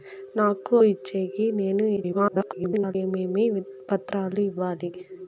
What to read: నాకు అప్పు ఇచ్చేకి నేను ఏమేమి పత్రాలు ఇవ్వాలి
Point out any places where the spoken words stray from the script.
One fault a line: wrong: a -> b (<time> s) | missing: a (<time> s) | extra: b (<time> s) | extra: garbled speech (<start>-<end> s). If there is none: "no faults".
missing: అప్పు (0.8 s)
extra: garbled speech (2.0-3.0 s)